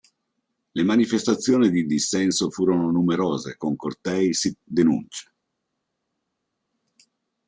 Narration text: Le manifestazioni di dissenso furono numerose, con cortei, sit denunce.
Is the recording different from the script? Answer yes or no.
no